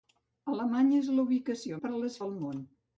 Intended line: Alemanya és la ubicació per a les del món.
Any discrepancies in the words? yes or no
no